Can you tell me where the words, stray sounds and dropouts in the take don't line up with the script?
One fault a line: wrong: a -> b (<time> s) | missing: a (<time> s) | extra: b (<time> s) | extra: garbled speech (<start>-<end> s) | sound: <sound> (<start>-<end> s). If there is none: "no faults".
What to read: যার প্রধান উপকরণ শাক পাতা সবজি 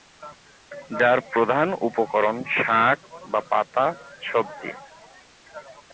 extra: বা (3.3 s)